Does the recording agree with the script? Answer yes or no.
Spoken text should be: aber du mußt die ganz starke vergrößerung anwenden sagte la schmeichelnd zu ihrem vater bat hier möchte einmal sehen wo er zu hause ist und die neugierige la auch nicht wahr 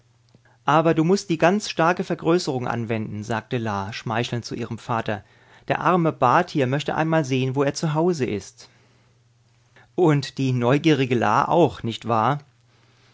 no